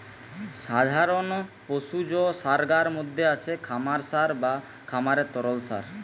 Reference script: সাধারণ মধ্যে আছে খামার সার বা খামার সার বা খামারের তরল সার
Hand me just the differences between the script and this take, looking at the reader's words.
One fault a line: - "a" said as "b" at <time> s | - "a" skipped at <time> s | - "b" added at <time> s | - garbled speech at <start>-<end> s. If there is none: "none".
- "পশুজ সারগার" added at 1.7 s
- "খামার সার বা" skipped at 4.5 s